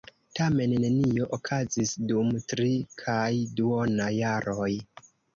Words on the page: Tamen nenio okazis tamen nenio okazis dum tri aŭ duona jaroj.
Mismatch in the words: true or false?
true